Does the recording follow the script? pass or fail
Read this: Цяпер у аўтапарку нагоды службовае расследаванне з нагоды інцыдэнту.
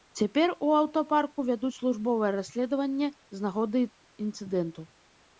fail